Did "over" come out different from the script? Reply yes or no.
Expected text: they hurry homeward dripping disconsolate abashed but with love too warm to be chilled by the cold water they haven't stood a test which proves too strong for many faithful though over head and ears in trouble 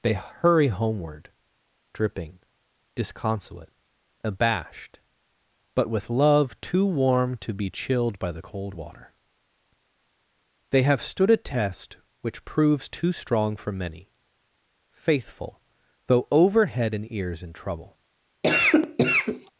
no